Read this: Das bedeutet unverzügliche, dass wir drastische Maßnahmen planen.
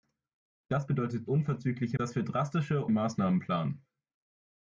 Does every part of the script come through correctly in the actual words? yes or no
yes